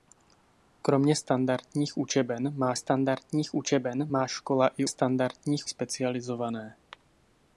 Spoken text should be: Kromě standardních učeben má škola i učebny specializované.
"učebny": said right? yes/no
no